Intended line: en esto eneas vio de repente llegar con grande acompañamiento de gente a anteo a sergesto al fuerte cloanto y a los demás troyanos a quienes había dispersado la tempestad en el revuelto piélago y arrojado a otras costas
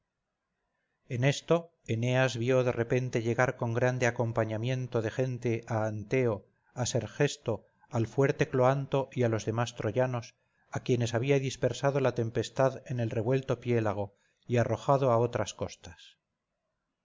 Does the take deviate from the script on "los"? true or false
false